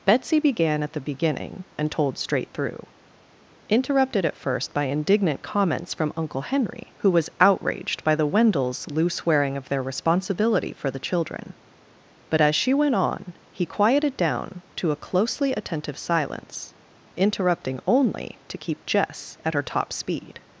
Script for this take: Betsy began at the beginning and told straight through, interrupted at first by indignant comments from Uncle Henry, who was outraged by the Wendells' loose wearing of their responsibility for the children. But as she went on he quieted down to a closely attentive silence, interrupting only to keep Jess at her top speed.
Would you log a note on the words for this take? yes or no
no